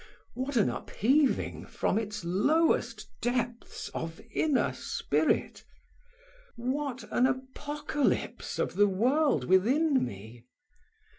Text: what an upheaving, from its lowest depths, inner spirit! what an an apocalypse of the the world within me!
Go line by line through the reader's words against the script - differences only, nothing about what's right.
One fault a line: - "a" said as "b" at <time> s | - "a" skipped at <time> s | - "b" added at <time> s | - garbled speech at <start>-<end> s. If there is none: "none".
- "of" added at 3.9 s
- "an" skipped at 7.3 s
- "the" skipped at 8.9 s